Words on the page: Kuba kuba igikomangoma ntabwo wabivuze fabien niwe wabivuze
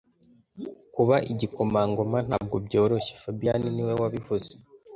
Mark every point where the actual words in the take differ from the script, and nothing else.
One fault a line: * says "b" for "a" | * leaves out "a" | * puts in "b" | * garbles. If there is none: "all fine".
* leaves out "kuba"
* says "byoroshye" for "wabivuze"